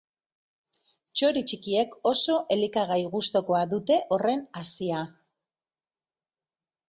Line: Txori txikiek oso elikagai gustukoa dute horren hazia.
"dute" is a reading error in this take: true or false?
false